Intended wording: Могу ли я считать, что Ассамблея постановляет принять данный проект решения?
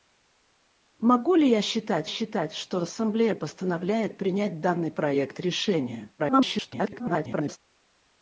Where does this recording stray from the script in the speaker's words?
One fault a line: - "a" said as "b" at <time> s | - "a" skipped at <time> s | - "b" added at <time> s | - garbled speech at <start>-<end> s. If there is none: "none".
- "считать" added at 2.1 s
- garbled speech at 6.2-7.6 s